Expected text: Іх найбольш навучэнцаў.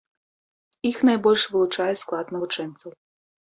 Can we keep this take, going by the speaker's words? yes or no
no